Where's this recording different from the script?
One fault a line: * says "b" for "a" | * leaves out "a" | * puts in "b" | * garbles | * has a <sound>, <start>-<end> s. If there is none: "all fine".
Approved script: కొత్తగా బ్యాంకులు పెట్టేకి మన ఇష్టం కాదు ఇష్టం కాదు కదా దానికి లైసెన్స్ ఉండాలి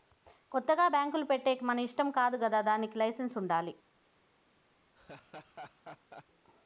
* leaves out "ఇష్టం కాదు"
* has a laugh, 4.9-6.3 s